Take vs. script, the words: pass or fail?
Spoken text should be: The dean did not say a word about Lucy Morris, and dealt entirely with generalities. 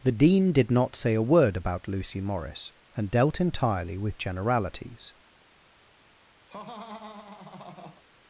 pass